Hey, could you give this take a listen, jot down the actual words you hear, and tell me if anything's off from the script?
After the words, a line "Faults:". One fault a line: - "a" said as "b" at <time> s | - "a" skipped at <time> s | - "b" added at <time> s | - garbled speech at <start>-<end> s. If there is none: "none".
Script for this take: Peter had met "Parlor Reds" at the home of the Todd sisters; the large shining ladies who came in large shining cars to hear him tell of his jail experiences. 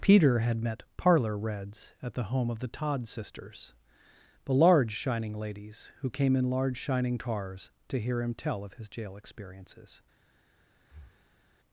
Peter had met "Parlor Reds" at the home of the Todd sisters; the large shining ladies who came in large shining cars to hear him tell of his jail experiences.
Faults:
none